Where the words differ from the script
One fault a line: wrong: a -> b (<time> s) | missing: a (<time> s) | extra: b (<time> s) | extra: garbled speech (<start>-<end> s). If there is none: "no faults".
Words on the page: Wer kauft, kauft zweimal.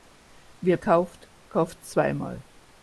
no faults